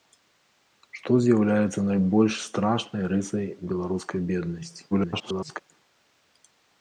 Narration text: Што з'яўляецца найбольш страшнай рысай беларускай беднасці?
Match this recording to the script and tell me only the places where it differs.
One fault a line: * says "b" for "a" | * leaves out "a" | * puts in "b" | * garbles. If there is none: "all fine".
* garbles